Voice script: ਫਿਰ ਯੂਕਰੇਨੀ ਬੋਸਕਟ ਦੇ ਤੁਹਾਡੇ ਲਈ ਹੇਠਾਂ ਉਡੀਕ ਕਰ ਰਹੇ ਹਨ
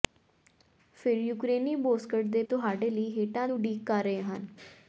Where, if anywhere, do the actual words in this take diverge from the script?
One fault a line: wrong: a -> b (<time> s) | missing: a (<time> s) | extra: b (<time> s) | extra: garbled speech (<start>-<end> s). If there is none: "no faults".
no faults